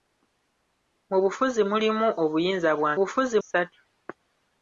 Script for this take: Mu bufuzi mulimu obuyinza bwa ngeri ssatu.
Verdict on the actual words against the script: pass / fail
fail